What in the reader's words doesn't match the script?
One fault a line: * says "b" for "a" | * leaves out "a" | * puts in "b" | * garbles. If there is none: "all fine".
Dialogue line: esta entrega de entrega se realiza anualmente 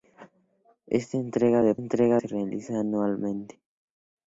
all fine